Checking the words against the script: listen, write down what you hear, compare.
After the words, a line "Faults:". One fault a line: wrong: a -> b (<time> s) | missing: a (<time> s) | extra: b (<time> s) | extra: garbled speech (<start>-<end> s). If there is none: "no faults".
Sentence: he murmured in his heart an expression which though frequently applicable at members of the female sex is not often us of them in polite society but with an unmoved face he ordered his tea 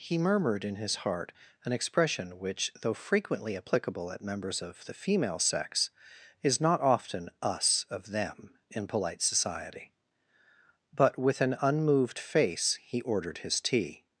he murmured in his heart an expression which though frequently applicable at members of the female sex is not often us of them in polite society but with an unmoved face he ordered his tea
Faults:
no faults